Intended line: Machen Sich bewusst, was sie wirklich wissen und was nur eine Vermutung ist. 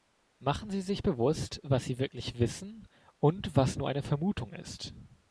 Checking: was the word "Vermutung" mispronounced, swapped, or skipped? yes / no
no